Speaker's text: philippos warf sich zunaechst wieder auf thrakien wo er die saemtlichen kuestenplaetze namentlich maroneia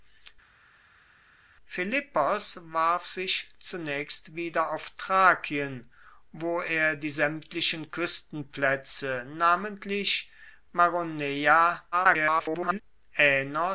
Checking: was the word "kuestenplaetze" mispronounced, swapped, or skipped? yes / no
no